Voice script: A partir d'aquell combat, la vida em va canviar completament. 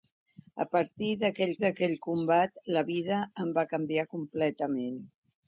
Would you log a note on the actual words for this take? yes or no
yes